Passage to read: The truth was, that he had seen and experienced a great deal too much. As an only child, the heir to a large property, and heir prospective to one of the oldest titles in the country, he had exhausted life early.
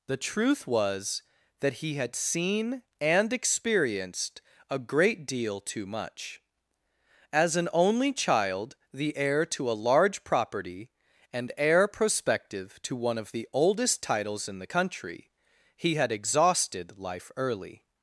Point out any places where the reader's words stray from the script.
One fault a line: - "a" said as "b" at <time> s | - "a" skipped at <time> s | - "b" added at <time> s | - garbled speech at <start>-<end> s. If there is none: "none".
none